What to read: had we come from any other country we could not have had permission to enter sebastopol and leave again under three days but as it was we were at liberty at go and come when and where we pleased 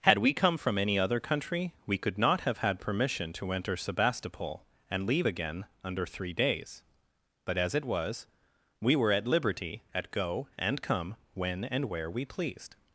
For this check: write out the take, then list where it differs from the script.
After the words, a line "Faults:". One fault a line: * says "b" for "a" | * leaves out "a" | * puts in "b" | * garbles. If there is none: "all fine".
had we come from any other country we could not have had permission to enter sebastopol and leave again under three days but as it was we were at liberty at go and come when and where we pleased
Faults:
all fine